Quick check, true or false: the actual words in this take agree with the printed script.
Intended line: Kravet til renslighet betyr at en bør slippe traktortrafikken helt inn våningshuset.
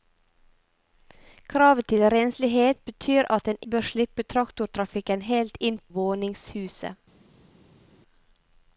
true